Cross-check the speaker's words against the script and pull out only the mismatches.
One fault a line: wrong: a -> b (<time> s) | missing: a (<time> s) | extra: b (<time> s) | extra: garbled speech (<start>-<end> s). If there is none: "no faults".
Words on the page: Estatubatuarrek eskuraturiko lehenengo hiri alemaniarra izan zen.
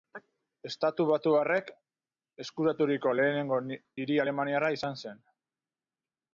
no faults